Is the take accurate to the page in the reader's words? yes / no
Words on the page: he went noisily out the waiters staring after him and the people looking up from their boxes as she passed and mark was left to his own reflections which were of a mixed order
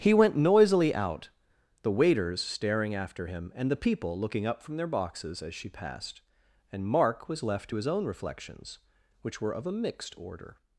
yes